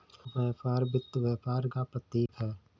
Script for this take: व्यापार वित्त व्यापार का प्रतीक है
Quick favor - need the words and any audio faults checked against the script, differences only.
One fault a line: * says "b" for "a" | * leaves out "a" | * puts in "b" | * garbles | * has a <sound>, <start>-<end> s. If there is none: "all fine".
* has a dropout, 2.3-2.3 s